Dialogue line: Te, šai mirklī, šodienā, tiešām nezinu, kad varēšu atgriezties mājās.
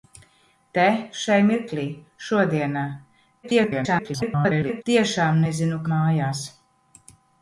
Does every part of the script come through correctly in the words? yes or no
no